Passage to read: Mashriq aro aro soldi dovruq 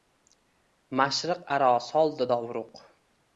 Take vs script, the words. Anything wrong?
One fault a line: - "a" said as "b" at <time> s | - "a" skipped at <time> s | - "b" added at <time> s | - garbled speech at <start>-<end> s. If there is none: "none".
- "aro" skipped at 1.7 s